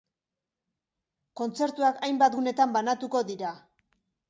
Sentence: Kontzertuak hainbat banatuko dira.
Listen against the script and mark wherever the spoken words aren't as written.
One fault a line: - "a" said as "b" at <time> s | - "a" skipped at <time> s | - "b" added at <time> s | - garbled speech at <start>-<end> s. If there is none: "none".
- "gunetan" added at 2.4 s